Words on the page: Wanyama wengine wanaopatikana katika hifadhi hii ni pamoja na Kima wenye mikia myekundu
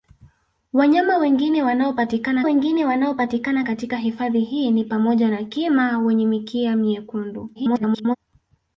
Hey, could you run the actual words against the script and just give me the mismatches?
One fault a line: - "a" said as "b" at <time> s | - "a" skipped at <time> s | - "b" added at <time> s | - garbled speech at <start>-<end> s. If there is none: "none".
- "wengine wanaopatikana" added at 2.4 s
- garbled speech at 7.5-8.2 s